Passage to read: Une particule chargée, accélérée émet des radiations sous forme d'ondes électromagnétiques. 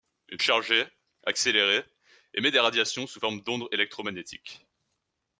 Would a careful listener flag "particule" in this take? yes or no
yes